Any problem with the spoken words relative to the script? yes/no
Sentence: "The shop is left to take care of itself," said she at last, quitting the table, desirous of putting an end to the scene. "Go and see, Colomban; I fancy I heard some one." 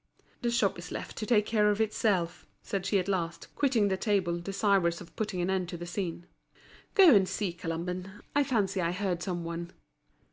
no